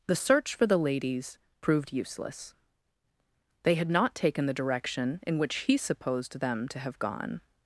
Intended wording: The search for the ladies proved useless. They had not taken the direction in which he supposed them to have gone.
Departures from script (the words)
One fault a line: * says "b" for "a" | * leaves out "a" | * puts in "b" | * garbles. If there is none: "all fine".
all fine